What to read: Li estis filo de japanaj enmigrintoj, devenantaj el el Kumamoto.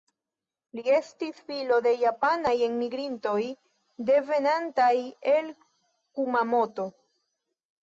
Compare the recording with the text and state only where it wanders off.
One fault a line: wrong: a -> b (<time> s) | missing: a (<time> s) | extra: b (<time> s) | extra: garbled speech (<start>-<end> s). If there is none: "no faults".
missing: el (5.5 s)